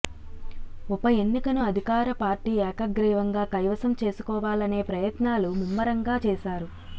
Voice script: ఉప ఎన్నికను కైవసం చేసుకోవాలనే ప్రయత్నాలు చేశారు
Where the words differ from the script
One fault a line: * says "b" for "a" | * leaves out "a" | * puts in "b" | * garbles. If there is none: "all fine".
* puts in "అధికార పార్టీ ఏకగ్రీవంగా"
* puts in "ముమ్మరంగా"